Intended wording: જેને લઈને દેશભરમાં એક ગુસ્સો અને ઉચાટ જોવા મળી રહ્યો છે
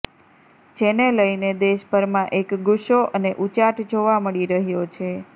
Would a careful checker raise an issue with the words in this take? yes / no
no